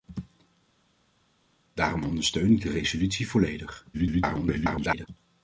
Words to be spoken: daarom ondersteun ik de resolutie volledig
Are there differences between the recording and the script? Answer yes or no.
yes